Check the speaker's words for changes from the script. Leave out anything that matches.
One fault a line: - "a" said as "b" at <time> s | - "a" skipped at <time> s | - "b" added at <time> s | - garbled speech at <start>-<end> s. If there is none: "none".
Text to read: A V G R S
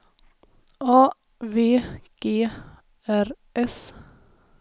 none